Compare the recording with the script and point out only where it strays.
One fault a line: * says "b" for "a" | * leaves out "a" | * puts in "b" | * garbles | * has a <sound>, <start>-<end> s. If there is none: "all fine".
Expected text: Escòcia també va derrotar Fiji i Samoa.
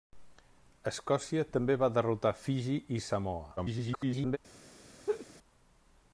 * garbles
* has a laugh, 5.1-5.3 s